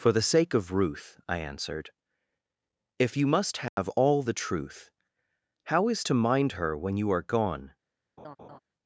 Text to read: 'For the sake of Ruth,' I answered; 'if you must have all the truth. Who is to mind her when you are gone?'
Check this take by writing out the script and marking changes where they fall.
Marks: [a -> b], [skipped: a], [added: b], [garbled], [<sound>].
'For the sake of Ruth,' I answered; 'if you must have [dropout] all the truth. [Who -> How] is to mind her when you are gone?' [laugh]